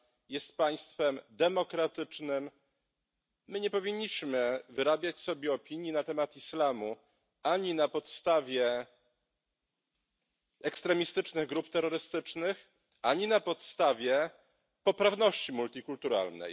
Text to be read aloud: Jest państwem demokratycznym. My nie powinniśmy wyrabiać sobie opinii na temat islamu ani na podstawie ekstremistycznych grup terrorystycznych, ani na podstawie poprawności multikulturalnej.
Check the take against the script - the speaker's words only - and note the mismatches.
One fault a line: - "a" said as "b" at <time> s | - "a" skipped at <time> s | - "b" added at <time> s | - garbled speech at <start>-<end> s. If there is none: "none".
none